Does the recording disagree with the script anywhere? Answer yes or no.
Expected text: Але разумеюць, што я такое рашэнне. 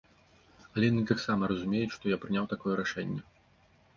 yes